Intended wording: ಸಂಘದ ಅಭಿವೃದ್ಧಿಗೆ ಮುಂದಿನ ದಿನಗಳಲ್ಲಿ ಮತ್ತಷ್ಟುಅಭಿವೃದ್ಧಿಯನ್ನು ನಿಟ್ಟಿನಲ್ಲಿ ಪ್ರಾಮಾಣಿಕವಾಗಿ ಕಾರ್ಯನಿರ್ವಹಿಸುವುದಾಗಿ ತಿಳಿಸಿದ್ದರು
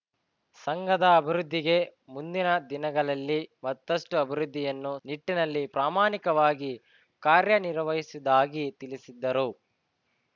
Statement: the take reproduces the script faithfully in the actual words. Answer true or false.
true